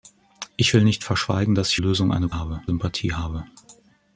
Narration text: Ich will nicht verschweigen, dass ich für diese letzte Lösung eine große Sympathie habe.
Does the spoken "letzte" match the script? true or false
false